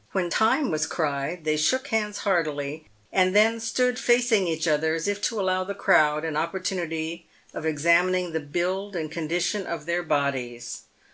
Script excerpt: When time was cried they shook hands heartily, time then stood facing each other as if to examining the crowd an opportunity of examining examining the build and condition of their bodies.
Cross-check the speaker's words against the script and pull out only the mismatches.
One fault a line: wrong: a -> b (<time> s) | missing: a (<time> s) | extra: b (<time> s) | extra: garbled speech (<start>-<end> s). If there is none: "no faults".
wrong: time -> and (3.1 s)
wrong: examining -> allow (5.4 s)
missing: examining (8.3 s)